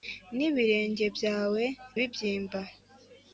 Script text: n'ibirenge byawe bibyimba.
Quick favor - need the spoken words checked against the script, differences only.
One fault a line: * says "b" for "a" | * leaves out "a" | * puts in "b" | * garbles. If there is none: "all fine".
all fine